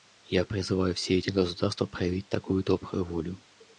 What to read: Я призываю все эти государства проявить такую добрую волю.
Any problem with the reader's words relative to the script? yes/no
no